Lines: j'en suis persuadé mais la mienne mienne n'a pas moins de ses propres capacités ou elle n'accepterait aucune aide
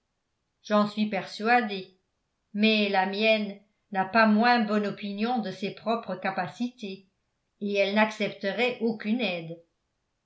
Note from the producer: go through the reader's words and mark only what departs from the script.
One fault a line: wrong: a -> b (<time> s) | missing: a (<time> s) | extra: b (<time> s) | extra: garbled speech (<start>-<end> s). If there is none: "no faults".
missing: mienne (3.6 s)
extra: bonne opinion (4.6 s)
wrong: ou -> et (7.6 s)